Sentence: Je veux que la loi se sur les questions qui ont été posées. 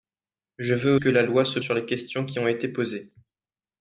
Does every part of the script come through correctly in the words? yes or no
yes